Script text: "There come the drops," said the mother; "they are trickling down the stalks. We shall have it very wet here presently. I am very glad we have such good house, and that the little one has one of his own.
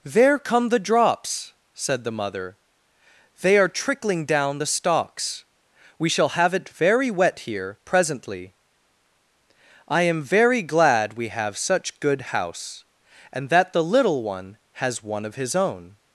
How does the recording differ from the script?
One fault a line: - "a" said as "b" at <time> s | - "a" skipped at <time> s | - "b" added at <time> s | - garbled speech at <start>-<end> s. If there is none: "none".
none